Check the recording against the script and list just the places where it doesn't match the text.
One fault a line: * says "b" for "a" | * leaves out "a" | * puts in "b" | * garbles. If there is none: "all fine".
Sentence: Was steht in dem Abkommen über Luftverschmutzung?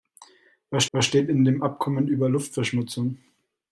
* puts in "was"